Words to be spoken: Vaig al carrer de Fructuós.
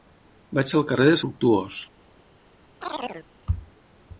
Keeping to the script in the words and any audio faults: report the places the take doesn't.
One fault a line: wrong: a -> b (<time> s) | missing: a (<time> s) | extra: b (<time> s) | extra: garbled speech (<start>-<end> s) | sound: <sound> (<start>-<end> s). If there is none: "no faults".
sound: chirp (2.8-3.3 s)